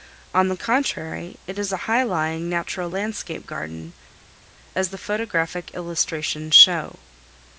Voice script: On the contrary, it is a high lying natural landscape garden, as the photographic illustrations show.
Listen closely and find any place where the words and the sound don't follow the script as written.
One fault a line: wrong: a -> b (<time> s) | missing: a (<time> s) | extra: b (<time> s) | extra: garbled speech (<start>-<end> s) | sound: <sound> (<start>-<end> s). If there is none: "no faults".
no faults